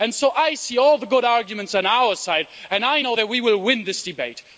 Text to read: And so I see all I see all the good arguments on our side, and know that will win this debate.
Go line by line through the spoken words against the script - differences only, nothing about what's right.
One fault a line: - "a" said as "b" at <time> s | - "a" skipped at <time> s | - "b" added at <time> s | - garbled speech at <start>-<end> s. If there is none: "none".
- "I see all" skipped at 1.0 s
- "I" added at 2.8 s
- "we" added at 3.3 s